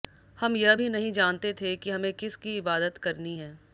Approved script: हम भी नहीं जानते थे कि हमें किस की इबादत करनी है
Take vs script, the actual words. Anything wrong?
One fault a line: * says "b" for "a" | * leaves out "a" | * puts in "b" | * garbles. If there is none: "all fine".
* puts in "यह"